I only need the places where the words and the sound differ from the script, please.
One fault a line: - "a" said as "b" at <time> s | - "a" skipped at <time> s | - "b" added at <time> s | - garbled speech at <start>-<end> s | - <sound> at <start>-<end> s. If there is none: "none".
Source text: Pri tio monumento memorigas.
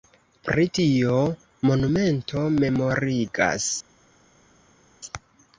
none